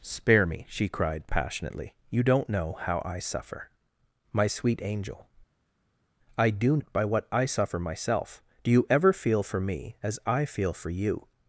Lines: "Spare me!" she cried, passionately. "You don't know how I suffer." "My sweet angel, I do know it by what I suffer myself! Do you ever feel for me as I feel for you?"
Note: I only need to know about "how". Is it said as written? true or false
true